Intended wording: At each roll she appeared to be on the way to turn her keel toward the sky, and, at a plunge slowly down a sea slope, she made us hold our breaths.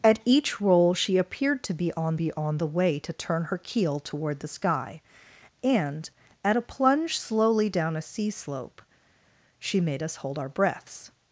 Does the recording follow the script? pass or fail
fail